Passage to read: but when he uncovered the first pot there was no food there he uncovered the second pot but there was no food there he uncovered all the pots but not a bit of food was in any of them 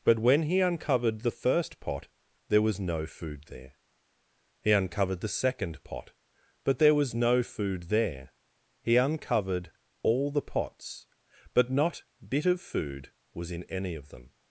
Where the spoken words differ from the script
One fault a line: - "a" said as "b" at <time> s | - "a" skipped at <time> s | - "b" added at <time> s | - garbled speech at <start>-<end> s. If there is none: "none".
- "a" skipped at 12.0 s